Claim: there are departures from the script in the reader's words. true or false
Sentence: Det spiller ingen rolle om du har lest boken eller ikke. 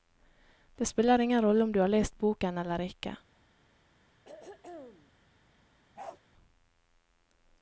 false